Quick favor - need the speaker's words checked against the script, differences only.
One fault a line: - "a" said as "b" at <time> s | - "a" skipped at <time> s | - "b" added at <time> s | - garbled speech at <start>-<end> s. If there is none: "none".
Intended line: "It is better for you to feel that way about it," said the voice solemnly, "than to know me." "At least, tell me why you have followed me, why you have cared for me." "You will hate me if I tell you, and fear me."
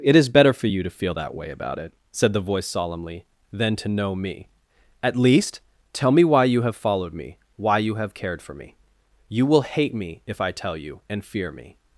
none